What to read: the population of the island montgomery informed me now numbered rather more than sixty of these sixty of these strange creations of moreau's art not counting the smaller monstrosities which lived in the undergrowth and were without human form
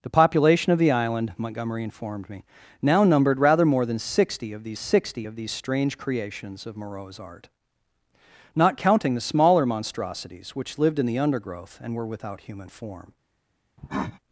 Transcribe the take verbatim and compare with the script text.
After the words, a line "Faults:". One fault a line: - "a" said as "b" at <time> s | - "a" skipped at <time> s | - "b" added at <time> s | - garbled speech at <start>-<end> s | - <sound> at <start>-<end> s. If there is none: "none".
the population of the island montgomery informed me now numbered rather more than sixty of these sixty of these strange creations of moreau's art not counting the smaller monstrosities which lived in the undergrowth and were without human form
Faults:
- cough at 13.8-14.2 s